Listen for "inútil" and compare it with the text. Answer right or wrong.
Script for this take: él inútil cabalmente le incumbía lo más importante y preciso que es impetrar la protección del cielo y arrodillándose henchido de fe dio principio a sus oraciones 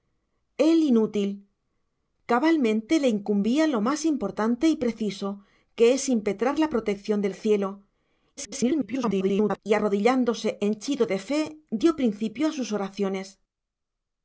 right